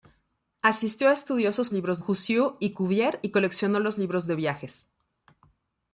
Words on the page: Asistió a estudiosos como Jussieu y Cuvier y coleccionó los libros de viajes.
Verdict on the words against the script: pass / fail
fail